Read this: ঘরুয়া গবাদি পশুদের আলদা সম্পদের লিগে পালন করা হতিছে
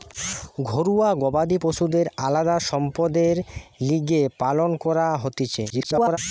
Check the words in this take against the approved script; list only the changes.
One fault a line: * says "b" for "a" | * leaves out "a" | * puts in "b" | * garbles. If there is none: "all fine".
* garbles